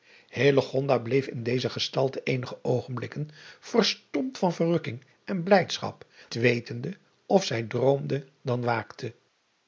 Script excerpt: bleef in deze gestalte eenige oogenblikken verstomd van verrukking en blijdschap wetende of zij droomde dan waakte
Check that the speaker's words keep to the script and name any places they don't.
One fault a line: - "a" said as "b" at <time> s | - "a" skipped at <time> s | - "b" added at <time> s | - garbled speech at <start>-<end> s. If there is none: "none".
none